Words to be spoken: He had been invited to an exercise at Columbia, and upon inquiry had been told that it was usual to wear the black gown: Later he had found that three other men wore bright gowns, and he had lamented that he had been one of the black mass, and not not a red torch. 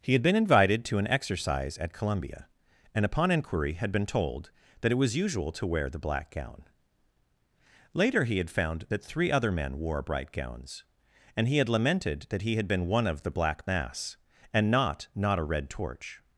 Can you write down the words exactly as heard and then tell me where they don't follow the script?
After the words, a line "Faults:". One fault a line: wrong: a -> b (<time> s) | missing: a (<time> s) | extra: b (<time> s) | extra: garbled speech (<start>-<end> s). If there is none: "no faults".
He had been invited to an exercise at Columbia, and upon inquiry had been told that it was usual to wear the black gown: Later he had found that three other men wore bright gowns, and he had lamented that he had been one of the black mass, and not not a red torch.
Faults:
no faults